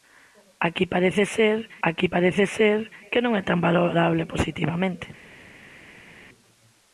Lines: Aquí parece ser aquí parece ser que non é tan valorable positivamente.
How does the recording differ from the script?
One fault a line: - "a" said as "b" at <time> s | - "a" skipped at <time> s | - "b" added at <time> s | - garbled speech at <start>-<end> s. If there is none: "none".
none